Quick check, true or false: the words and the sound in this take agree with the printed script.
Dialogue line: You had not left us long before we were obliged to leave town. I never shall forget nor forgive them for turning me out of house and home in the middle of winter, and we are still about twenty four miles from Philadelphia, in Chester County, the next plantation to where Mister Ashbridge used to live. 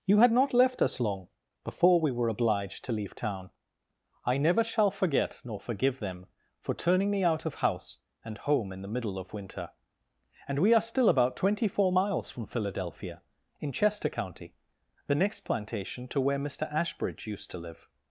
true